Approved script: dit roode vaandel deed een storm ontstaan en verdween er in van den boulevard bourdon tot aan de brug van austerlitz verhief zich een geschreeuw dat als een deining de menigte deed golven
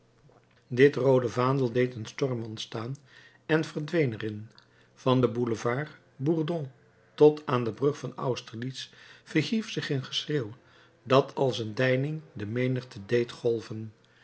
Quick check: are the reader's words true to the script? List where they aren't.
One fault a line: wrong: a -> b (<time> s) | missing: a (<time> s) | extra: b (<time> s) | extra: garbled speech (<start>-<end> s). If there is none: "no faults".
no faults